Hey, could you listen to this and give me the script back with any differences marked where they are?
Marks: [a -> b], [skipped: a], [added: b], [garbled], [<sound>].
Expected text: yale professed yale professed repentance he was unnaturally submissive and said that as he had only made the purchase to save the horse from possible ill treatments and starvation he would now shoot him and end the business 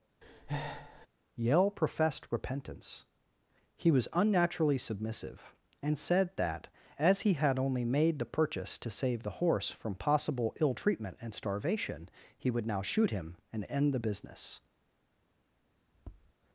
[breath] yale professed [skipped: yale professed] repentance he was unnaturally submissive and said that as he had only made the purchase to save the horse from possible ill [treatments -> treatment] and starvation he would now shoot him and end the business [tap]